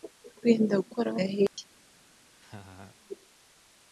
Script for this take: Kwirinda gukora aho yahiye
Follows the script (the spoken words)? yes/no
yes